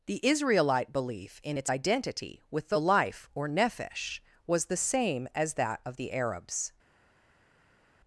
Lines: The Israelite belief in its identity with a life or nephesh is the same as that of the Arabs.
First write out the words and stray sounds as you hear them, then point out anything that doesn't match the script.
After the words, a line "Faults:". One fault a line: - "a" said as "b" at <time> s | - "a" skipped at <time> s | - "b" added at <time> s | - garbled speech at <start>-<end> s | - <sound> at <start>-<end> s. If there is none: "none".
The Israelite belief in its identity with the life or nephesh was the same as that of the Arabs.
Faults:
- "a" said as "the" at 2.7 s
- "is" said as "was" at 4.4 s